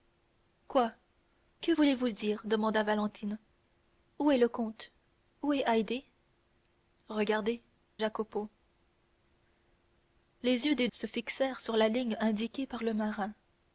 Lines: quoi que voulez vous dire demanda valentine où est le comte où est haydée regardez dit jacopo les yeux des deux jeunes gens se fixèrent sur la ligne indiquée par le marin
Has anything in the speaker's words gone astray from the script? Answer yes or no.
yes